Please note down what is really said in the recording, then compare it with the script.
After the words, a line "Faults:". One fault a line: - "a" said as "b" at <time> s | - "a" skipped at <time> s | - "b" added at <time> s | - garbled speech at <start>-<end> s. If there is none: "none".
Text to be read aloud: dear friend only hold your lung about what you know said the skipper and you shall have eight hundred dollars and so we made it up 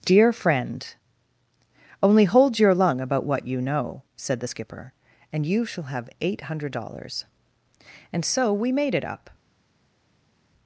dear friend only hold your lung about what you know said the skipper and you shall have eight hundred dollars and so we made it up
Faults:
none